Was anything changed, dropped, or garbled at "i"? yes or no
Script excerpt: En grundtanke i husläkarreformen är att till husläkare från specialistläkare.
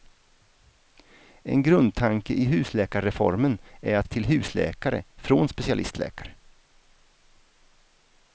no